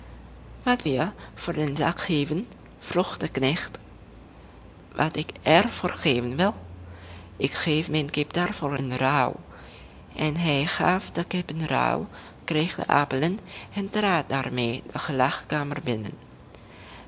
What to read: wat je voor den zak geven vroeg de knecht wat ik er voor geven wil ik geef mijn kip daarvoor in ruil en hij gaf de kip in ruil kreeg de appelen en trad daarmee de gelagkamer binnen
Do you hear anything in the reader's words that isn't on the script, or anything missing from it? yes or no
no